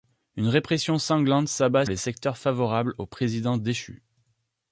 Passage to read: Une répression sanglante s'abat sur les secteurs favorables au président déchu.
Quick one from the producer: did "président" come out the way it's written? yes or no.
yes